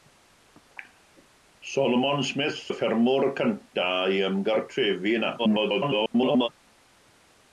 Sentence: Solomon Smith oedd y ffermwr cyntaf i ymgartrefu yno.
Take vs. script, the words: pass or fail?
fail